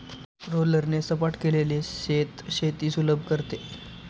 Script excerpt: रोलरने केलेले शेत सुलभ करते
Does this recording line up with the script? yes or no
no